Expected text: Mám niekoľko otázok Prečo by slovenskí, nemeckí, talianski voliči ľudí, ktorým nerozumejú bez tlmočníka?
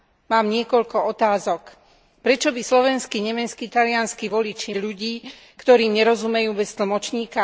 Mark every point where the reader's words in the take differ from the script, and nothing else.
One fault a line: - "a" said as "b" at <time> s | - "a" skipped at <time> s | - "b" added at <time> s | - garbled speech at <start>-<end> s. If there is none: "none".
none